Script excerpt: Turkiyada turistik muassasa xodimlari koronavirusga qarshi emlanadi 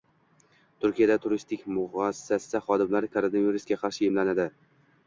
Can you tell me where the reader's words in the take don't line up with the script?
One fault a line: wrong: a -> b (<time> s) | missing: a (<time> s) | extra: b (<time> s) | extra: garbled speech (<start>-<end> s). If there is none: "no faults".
no faults